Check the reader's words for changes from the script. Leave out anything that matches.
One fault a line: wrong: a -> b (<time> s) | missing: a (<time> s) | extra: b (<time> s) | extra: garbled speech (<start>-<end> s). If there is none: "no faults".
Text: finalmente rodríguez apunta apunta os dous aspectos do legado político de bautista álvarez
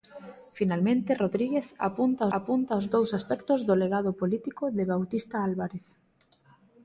no faults